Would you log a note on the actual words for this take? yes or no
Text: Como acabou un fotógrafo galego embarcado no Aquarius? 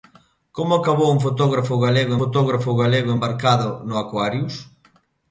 yes